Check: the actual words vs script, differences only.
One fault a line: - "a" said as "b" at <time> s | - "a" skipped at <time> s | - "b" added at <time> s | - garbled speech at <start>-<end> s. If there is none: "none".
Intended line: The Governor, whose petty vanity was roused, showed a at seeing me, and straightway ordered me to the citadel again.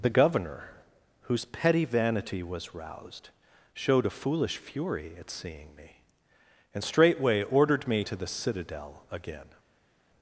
- "foolish fury" added at 4.1 s